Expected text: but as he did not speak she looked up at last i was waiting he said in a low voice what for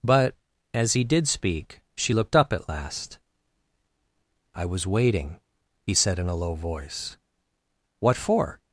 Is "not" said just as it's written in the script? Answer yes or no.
no